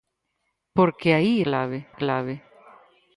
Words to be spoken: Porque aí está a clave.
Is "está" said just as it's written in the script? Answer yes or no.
no